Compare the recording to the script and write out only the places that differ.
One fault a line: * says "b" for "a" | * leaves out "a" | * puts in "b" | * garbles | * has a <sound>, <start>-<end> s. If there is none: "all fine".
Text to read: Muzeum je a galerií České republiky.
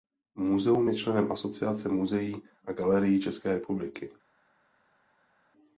* puts in "členem Asociace muzeí"